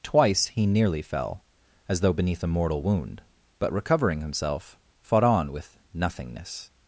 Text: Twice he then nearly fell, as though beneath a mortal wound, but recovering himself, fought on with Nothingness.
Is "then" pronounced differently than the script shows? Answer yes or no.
yes